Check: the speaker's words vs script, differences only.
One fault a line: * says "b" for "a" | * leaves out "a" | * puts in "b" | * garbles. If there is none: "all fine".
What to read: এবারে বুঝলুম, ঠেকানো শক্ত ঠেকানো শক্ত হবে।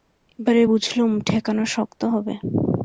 * leaves out "ঠেকানো শক্ত"